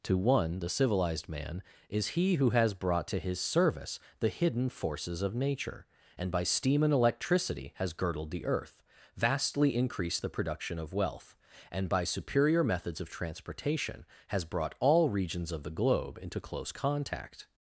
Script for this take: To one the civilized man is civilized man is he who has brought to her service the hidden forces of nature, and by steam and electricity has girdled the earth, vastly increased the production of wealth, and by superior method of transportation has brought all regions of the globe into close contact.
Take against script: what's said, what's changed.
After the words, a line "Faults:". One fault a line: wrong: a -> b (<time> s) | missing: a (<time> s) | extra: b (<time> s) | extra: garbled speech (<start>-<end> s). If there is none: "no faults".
To one the civilized man is he who has brought to his service the hidden forces of nature, and by steam and electricity has girdled the earth, vastly increased the production of wealth, and by superior methods of transportation has brought all regions of the globe into close contact.
Faults:
missing: civilized man is (2.2 s)
wrong: her -> his (3.2 s)
wrong: method -> methods (12.6 s)